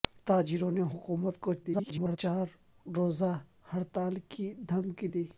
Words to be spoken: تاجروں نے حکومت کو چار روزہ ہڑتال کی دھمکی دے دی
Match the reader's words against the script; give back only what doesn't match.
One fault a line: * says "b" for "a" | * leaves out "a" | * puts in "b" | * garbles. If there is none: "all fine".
* garbles
* leaves out "دے"